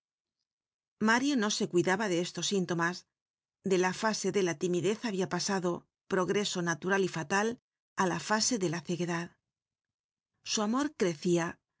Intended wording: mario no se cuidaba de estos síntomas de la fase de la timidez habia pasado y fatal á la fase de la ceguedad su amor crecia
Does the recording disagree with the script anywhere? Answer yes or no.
yes